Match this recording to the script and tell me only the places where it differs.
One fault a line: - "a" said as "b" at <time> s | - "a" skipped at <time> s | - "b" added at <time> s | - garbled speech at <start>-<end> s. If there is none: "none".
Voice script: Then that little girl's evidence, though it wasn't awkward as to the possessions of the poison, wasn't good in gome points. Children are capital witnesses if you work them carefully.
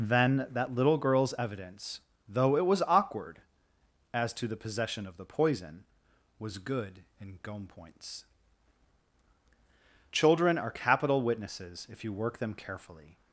- "wasn't" said as "was" at 2.6 s
- "possessions" said as "possession" at 4.5 s
- "wasn't" said as "was" at 6.4 s